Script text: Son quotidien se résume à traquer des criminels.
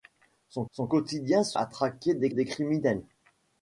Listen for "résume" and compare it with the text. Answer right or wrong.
wrong